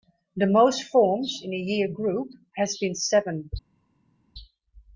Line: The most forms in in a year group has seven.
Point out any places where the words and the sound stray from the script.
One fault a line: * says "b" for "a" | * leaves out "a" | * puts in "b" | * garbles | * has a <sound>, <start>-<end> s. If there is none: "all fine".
* leaves out "in"
* puts in "been"